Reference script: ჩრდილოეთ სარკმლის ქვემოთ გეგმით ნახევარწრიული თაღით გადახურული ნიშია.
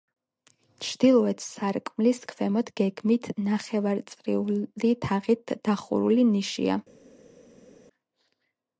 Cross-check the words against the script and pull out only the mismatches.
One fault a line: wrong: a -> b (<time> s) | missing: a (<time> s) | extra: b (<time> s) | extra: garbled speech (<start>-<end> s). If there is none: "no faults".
no faults